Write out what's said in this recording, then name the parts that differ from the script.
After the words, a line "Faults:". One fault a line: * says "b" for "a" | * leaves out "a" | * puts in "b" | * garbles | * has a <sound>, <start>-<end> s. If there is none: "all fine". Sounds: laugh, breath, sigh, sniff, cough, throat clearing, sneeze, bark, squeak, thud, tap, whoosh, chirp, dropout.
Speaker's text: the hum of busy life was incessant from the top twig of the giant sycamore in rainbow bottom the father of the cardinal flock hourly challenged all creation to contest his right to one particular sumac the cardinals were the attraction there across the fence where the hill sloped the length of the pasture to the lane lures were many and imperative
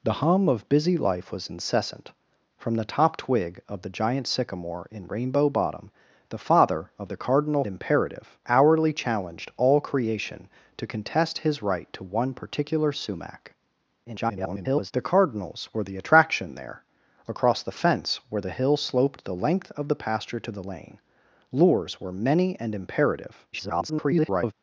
the hum of busy life was incessant from the top twig of the giant sycamore in rainbow bottom the father of the cardinal imperative hourly challenged all creation to contest his right to one particular sumac [garbled] the cardinals were the attraction there across the fence where the hill sloped the length of the pasture to the lane lures were many and imperative [garbled]
Faults:
* says "imperative" for "flock"
* garbles
* garbles